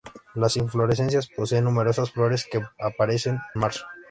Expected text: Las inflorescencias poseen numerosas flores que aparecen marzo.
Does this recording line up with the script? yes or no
yes